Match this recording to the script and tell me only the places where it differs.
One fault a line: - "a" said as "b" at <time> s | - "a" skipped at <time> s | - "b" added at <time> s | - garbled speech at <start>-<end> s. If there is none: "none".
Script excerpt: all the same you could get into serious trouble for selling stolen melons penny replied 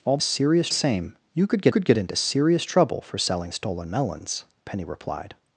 - "the" said as "serious" at 0.2 s
- "could get" added at 1.7 s